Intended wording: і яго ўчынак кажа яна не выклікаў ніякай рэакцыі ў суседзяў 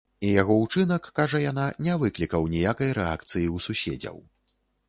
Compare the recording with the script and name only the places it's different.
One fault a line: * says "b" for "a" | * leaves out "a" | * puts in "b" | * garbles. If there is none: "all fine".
all fine